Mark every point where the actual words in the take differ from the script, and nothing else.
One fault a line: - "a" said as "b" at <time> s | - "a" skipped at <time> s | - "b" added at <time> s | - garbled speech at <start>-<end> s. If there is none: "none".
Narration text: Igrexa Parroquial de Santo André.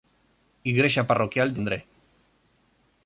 - "Santo" skipped at 1.6 s